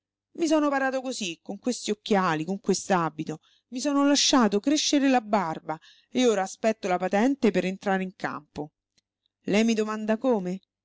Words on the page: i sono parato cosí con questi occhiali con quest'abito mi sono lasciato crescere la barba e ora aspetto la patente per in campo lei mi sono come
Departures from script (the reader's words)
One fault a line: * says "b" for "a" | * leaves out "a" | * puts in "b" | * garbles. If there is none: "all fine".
* puts in "entrare"
* says "domanda" for "sono"